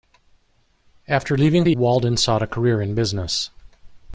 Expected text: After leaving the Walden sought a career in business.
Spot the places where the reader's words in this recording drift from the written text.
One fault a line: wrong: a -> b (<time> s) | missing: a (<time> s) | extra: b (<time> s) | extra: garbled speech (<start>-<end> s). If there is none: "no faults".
no faults